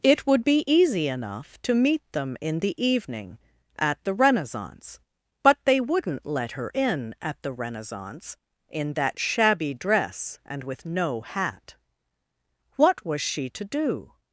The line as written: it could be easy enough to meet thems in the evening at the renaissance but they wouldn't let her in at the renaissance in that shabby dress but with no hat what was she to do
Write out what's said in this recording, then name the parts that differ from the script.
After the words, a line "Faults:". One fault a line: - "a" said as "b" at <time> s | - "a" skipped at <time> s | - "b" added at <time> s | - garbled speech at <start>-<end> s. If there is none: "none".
it would be easy enough to meet them in the evening at the renaissance but they wouldn't let her in at the renaissance in that shabby dress and with no hat what was she to do
Faults:
- "could" said as "would" at 0.2 s
- "thems" said as "them" at 2.1 s
- "but" said as "and" at 10.4 s